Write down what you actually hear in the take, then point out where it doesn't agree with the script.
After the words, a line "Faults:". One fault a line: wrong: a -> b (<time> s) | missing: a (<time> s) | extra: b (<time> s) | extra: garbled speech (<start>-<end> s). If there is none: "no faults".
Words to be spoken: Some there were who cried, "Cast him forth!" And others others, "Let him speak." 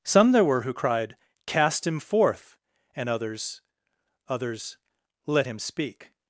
Some there were who cried, "Cast him forth!" And others others, "Let him speak."
Faults:
no faults